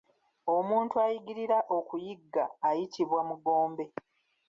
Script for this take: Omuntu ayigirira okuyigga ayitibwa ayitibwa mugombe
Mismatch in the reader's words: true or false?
true